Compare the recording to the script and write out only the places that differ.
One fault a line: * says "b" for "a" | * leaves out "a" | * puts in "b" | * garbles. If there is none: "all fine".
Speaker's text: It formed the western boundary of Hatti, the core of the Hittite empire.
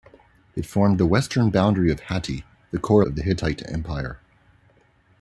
all fine